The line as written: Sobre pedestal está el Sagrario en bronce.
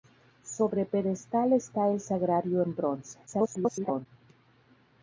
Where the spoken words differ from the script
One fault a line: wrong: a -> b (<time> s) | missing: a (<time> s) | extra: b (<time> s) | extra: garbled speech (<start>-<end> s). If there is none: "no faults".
extra: garbled speech (3.3-4.1 s)